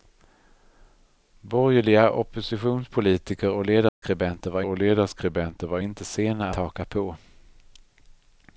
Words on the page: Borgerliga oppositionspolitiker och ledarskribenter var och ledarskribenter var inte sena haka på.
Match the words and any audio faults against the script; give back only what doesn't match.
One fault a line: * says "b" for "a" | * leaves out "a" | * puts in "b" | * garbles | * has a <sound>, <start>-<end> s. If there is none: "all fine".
* has a dropout, 3.9-4.0 s